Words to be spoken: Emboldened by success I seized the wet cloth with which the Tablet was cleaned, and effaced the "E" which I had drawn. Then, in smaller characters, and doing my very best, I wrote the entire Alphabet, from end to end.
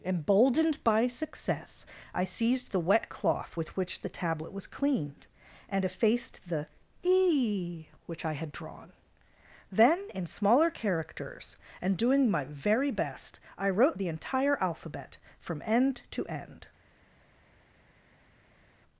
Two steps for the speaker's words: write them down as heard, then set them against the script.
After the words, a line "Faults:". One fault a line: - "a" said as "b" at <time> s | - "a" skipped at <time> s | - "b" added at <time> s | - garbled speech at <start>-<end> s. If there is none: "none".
Emboldened by success I seized the wet cloth with which the Tablet was cleaned, and effaced the "E" which I had drawn. Then, in smaller characters, and doing my very best, I wrote the entire Alphabet, from end to end.
Faults:
none